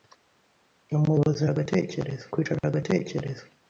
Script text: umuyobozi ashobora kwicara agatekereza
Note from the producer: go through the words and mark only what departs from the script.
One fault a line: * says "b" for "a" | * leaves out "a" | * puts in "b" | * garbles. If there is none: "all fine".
* says "agatekereza" for "ashobora"